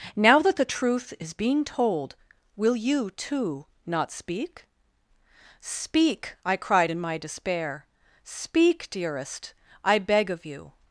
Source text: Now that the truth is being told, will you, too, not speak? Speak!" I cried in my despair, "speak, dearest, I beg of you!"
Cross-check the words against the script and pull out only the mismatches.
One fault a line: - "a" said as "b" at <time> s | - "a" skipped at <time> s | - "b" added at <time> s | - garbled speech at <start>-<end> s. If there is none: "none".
none